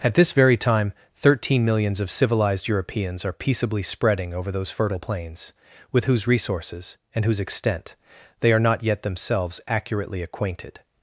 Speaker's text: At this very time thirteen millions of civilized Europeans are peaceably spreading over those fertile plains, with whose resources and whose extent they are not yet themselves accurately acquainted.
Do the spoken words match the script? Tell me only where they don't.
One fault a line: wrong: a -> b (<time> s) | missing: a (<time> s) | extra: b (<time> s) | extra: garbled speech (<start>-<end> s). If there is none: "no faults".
no faults